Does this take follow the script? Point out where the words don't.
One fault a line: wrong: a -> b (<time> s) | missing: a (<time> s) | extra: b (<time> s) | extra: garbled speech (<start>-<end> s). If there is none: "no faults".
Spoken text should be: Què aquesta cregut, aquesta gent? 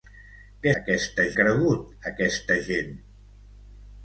no faults